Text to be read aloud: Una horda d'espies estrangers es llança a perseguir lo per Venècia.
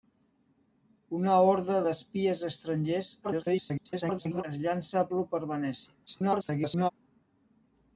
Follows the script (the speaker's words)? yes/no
no